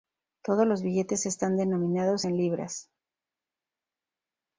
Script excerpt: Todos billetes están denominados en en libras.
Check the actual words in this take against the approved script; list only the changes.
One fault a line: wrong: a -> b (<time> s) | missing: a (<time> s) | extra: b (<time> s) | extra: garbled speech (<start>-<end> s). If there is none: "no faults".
extra: los (0.7 s)
missing: en (2.4 s)